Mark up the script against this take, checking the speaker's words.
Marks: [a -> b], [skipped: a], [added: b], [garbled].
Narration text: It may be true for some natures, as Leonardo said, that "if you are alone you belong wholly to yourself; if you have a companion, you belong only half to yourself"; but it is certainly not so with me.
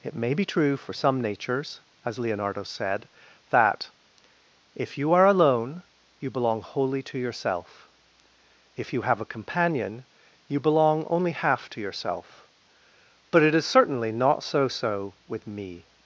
It may be true for some natures, as Leonardo said, that "if you are alone you belong wholly to yourself; if you have a companion, you belong only half to yourself"; but it is certainly not so [added: so] with me.